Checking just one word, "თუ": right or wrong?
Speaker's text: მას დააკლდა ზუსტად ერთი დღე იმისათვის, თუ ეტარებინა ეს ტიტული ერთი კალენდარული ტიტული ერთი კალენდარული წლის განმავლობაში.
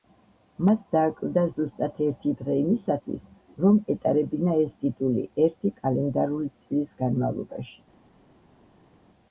wrong